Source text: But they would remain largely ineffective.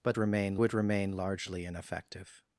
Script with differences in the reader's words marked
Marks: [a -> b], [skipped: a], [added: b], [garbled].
But [they -> remain] would remain largely ineffective.